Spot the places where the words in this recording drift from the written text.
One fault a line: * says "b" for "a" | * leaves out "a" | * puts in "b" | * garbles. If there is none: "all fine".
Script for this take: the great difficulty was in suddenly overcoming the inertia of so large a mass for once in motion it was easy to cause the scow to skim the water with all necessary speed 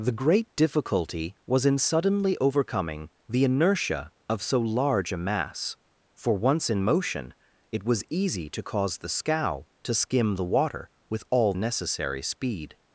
all fine